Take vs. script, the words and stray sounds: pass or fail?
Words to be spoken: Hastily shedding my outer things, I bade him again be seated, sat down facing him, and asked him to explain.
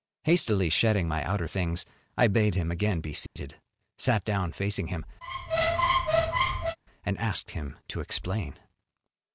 fail